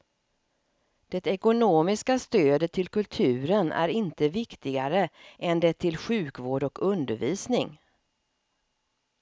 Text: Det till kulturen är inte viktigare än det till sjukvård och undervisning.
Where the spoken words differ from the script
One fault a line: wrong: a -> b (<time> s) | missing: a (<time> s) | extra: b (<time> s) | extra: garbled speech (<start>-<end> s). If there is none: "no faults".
extra: ekonomiska stödet (1.3 s)